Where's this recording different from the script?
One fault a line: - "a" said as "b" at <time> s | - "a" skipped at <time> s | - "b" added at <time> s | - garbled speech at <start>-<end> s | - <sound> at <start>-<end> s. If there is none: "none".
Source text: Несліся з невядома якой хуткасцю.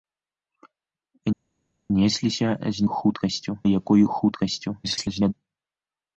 - "невядома" said as "хуткасцю" at 2.8 s
- garbled speech at 4.8-5.3 s